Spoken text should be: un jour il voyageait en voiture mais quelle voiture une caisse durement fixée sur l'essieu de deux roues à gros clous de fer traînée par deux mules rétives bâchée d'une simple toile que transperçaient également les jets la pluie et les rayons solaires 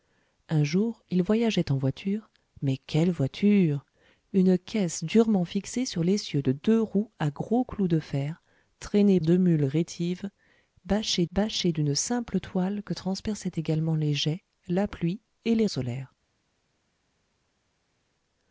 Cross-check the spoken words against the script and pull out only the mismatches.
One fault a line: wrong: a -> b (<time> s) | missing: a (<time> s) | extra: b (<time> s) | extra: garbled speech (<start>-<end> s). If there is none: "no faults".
missing: par (9.2 s)
extra: bâchée (11.3 s)
missing: rayons (15.7 s)